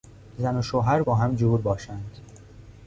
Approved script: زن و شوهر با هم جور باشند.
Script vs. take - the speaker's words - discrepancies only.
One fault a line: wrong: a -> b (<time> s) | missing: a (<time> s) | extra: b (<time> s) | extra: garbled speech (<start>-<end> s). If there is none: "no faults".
no faults